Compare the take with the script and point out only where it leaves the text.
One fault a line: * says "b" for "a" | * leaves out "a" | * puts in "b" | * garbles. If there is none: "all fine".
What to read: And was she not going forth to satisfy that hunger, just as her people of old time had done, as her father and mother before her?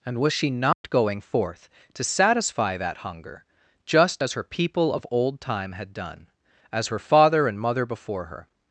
all fine